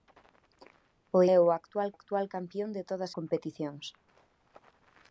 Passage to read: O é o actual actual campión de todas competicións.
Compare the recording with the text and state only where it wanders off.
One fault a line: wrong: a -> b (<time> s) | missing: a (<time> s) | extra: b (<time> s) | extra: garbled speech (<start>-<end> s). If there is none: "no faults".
no faults